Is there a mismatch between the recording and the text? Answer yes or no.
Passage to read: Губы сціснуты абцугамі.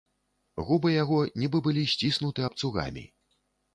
yes